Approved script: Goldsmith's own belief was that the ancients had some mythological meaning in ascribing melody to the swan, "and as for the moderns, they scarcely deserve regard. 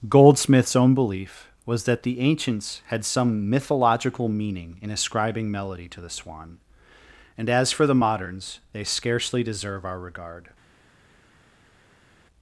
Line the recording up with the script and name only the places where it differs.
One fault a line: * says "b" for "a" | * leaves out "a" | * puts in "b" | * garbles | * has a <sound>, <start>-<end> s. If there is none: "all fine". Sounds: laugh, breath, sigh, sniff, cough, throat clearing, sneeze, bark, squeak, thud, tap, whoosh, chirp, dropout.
* puts in "our"